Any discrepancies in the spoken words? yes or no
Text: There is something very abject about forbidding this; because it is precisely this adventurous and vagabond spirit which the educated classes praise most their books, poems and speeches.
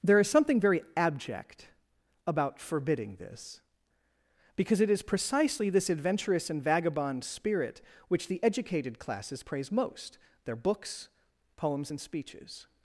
no